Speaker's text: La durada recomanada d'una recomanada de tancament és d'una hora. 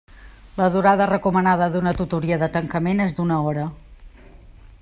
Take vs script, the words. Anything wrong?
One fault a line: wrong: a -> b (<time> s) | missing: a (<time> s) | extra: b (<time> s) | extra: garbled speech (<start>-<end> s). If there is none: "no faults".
wrong: recomanada -> tutoria (2.0 s)